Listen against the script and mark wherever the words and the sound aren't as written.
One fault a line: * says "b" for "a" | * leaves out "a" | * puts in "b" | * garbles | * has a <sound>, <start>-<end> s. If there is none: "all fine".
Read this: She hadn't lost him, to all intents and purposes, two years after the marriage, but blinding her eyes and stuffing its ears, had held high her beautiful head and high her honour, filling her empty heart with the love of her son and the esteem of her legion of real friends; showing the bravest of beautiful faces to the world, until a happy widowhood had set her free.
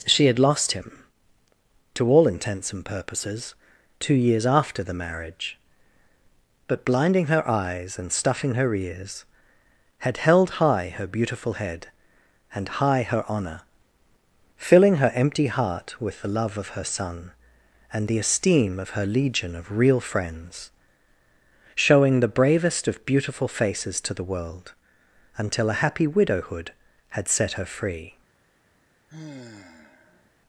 * says "had" for "hadn't"
* says "her" for "its"
* has a sigh, 29.1-30.3 s